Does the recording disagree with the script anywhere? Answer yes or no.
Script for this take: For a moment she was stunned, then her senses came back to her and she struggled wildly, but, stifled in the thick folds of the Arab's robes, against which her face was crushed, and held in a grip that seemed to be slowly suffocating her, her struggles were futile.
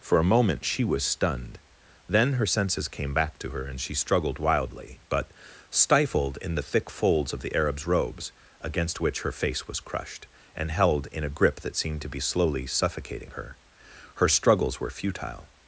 no